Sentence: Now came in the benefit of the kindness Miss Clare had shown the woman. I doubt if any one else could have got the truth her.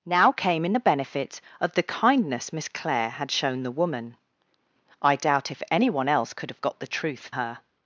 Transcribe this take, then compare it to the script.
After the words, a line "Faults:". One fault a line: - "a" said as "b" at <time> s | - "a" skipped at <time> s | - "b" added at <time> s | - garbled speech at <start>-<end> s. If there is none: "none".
Now came in the benefit of the kindness Miss Clare had shown the woman. I doubt if any one else could have got the truth her.
Faults:
none